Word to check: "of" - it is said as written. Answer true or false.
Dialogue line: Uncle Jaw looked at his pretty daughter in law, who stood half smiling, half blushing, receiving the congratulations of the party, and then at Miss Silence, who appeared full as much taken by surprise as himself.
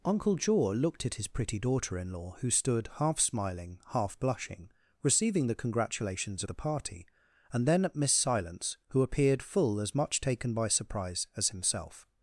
false